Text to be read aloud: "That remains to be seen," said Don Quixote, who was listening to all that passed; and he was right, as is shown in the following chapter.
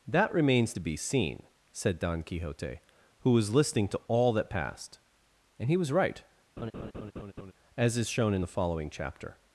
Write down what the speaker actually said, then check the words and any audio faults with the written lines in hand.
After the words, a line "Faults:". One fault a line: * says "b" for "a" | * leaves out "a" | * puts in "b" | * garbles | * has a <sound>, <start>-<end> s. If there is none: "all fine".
"That remains to be seen," said Don Quixote, who was listening to all that passed; and he was right, as is shown in the following chapter.
Faults:
* has a laugh, 6.6-7.5 s